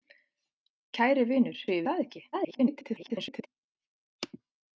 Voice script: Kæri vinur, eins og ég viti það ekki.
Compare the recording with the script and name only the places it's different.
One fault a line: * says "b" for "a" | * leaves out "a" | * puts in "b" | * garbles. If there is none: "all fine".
* leaves out "eins"
* leaves out "viti"
* garbles